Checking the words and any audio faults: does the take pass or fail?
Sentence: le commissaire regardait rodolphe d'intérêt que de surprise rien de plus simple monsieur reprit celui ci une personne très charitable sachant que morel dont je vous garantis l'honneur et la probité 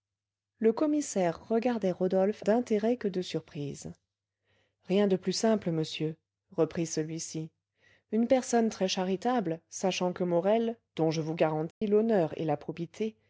fail